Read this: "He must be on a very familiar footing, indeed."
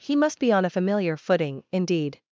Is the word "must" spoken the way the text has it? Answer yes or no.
yes